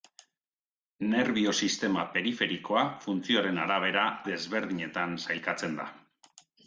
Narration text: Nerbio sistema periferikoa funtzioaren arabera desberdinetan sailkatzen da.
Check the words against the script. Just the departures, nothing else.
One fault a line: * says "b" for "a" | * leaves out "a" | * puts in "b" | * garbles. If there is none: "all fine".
all fine